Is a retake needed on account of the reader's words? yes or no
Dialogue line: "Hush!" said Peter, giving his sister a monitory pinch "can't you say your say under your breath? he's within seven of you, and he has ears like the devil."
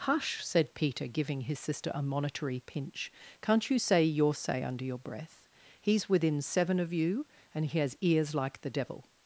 no